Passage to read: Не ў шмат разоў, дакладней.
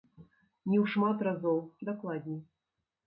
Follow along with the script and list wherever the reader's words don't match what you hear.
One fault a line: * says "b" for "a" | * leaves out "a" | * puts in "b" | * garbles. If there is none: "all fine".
all fine